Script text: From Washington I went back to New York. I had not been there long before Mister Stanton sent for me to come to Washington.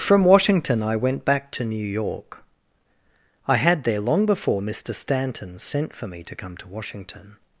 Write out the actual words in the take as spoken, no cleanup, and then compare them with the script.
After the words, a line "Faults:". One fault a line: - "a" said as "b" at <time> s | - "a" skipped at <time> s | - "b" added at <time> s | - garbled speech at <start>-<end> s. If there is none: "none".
From Washington I went back to New York. I had there long before Mister Stanton sent for me to come to Washington.
Faults:
- "not been" skipped at 3.8 s